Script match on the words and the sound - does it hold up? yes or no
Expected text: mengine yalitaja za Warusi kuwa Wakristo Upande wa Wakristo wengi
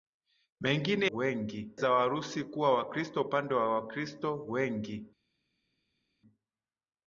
no